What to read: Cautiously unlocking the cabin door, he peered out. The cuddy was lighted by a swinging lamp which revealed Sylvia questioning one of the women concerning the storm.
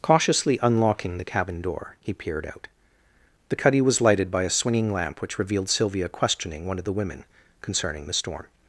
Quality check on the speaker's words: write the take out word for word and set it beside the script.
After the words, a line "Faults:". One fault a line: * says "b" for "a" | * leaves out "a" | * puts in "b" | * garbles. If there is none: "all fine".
Cautiously unlocking the cabin door, he peered out. The cuddy was lighted by a swinging lamp which revealed Sylvia questioning one of the women concerning the storm.
Faults:
all fine